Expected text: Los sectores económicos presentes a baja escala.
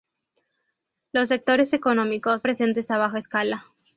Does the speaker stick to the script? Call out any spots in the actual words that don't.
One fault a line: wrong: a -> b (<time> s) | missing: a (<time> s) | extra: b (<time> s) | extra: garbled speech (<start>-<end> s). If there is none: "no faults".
no faults